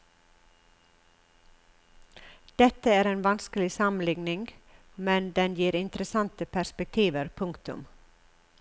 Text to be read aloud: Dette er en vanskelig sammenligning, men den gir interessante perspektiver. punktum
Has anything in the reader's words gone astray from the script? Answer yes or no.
no